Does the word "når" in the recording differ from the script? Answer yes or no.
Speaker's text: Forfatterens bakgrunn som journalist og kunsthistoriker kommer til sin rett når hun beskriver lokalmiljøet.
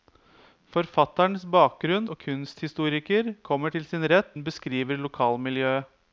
yes